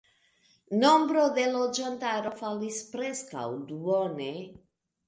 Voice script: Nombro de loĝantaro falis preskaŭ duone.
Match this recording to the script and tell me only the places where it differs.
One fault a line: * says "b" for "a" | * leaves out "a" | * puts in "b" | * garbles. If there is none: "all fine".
all fine